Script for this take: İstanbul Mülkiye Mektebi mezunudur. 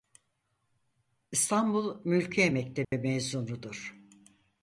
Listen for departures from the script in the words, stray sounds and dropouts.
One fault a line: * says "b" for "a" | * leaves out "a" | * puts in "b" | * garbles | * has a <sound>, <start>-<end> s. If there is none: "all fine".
* has a dropout, 2.8-2.9 s